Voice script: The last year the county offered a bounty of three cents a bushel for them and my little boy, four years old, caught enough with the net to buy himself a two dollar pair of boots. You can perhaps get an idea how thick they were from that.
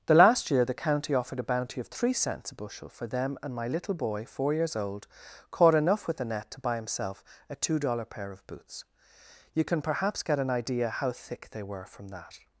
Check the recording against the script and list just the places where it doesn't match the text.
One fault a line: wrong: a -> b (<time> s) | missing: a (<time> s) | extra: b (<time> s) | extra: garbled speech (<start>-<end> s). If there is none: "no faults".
no faults